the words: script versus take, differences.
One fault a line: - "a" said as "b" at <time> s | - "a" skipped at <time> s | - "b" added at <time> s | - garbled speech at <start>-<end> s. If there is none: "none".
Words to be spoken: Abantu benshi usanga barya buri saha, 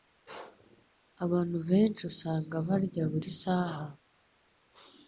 none